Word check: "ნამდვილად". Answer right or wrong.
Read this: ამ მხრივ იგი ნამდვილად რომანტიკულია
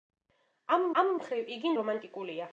wrong